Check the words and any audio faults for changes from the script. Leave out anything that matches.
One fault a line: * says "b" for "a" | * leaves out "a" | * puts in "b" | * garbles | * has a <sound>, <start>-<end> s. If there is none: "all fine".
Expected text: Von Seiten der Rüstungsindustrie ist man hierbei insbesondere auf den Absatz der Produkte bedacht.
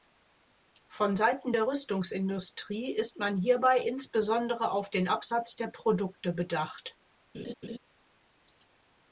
* has a laugh, 7.3-7.8 s